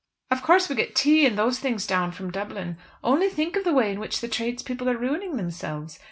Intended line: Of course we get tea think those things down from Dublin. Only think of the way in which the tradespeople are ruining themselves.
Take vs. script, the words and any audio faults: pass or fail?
fail